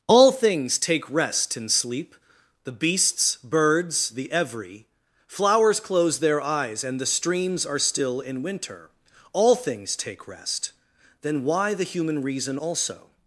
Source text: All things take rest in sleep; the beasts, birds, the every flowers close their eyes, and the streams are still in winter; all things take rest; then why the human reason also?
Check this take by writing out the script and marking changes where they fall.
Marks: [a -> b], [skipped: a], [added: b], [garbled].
All things take rest in sleep; the beasts, birds, the every flowers close their eyes, and the streams are still in winter; all things take rest; then why the human reason also?